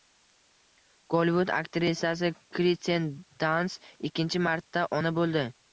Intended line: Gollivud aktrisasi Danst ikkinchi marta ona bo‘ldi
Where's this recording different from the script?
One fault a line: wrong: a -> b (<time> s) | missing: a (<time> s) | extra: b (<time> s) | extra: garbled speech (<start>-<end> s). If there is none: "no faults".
extra: Kirsten (2.6 s)